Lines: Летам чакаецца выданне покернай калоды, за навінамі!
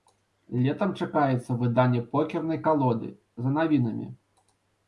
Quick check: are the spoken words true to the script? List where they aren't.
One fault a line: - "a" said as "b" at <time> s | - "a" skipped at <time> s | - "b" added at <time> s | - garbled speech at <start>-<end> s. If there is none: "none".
none